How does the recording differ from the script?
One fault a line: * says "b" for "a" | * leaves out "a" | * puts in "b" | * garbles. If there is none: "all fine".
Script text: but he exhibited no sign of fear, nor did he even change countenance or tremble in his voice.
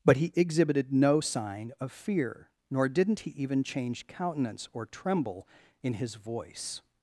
* says "didn't" for "did"